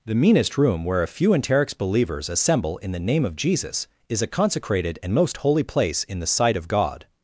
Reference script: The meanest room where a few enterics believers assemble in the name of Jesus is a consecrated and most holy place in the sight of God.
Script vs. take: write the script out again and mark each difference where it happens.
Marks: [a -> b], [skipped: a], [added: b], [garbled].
The meanest room where a few enterics believers assemble in the name of Jesus is a consecrated and most holy place in the sight of God.